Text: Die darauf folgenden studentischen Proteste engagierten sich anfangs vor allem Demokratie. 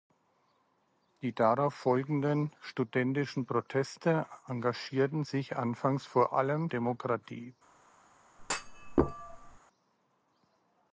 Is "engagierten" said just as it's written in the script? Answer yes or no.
yes